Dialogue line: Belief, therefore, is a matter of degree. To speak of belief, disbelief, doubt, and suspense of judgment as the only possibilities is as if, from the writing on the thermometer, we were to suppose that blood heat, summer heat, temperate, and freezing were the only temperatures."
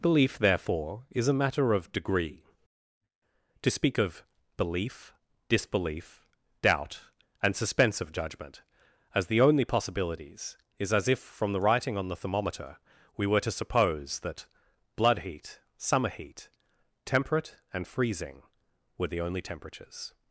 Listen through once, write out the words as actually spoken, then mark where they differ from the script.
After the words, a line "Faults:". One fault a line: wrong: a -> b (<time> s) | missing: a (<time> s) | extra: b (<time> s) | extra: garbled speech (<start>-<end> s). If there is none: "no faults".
Belief, therefore, is a matter of degree. To speak of belief, disbelief, doubt, and suspense of judgment as the only possibilities is as if, from the writing on the thermometer, we were to suppose that blood heat, summer heat, temperate, and freezing were the only temperatures."
Faults:
no faults